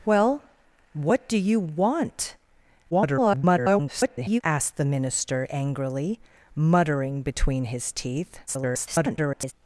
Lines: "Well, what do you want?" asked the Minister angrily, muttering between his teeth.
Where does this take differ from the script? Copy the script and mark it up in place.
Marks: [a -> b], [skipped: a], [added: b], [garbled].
"Well, what do you want?" [garbled] asked the Minister angrily, muttering between his teeth. [garbled]